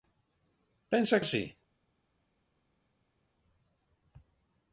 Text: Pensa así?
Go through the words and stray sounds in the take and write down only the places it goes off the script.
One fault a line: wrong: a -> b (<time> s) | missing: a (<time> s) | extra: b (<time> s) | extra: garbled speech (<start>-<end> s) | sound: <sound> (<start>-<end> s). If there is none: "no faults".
no faults